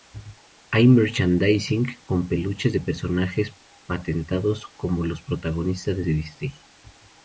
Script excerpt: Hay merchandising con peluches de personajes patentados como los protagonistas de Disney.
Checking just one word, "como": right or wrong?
right